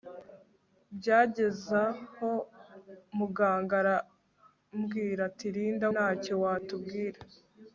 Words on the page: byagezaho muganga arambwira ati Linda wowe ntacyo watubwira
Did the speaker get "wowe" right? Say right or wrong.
wrong